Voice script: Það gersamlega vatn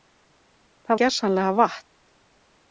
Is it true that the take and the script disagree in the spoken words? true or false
false